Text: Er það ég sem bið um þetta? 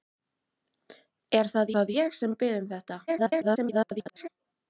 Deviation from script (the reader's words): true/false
true